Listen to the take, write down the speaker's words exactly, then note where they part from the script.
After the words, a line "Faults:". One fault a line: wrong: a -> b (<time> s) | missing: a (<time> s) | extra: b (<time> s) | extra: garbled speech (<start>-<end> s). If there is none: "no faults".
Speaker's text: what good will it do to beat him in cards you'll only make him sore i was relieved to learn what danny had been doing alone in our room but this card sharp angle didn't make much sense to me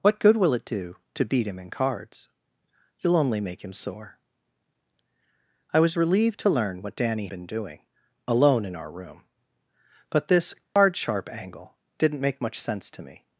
what good will it do to beat him in cards you'll only make him sore i was relieved to learn what danny been doing alone in our room but this card sharp angle didn't make much sense to me
Faults:
missing: had (7.3 s)